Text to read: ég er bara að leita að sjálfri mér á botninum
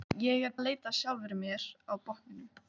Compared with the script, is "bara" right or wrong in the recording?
wrong